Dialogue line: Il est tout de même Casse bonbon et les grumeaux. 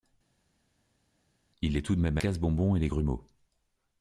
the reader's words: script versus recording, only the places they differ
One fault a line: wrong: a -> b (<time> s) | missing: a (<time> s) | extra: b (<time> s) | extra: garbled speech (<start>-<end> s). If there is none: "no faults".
no faults